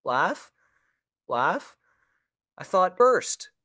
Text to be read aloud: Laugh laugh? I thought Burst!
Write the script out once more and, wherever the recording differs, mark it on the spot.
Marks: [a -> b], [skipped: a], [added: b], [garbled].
Laugh laugh? I thought Burst!